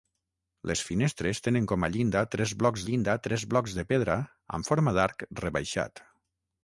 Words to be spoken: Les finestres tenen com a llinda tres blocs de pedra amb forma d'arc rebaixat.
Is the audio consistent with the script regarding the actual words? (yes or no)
no